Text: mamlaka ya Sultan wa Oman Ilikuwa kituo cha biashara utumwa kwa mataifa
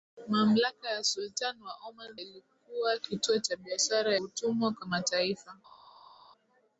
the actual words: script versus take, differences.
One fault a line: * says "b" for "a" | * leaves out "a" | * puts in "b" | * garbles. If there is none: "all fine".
all fine